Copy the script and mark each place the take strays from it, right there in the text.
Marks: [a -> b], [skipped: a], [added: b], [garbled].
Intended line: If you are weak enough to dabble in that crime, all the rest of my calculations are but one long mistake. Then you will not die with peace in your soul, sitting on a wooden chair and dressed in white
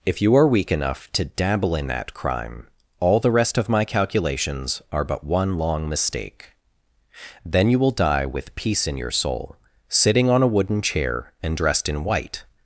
If you are weak enough to dabble in that crime, all the rest of my calculations are but one long mistake. Then you will [skipped: not] die with peace in your soul, sitting on a wooden chair and dressed in white